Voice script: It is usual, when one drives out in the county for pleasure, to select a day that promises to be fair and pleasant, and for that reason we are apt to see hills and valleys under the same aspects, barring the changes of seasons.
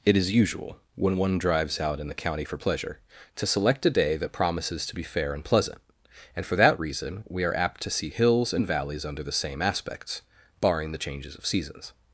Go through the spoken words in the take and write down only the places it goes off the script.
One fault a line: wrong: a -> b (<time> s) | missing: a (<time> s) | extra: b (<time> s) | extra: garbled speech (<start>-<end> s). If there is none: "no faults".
no faults